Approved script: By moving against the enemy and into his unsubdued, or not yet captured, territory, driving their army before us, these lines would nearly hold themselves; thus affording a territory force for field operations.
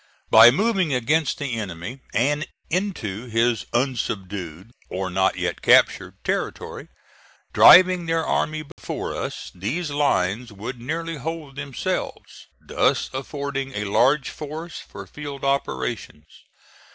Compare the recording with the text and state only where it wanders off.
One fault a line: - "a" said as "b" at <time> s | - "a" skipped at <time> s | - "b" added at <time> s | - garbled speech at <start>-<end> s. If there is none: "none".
- "territory" said as "large" at 13.9 s